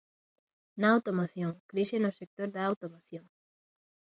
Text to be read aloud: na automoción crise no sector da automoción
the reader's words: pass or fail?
pass